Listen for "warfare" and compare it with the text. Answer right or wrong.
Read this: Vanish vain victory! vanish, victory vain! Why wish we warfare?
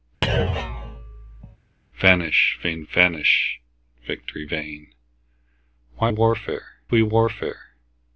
right